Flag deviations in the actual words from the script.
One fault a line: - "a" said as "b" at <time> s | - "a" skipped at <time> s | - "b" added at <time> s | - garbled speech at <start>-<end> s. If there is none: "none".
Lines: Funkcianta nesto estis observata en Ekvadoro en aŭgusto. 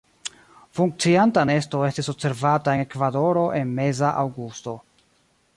- "meza" added at 3.8 s